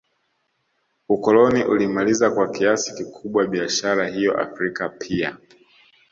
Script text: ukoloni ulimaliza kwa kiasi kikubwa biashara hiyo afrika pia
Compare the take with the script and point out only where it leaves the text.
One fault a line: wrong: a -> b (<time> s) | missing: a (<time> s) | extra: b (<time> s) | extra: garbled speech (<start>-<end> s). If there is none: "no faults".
no faults